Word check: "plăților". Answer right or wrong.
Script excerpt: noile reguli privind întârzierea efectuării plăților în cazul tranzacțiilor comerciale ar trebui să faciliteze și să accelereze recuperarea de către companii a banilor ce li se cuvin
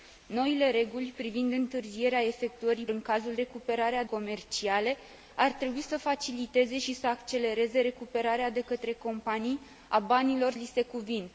wrong